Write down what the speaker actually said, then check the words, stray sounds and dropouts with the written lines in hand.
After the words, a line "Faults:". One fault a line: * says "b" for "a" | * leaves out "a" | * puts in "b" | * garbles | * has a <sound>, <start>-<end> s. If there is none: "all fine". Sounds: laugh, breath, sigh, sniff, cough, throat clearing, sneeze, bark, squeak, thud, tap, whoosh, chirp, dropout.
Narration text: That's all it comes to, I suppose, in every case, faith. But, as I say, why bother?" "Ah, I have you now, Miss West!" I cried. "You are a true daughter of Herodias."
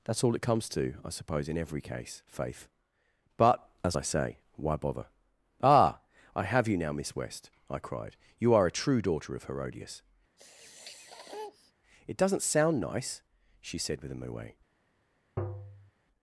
That's all it comes to, I suppose, in every case, faith. But, as I say, why bother?" "Ah, I have you now, Miss West!" I cried. "You are a true daughter of Herodias." "It doesn't sound nice," she said with a moue
Faults:
* has a sniff, 10.4-11.7 s
* puts in "It doesn't sound nice she said with a moue"
* has a tap, 15.4-15.9 s